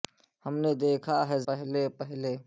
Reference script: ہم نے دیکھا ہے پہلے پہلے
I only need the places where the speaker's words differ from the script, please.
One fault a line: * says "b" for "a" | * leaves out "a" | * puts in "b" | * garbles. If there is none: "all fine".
all fine